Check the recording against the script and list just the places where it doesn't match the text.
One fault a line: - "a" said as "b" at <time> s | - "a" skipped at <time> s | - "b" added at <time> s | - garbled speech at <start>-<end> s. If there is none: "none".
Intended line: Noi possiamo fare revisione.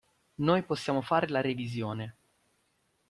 - "la" added at 1.3 s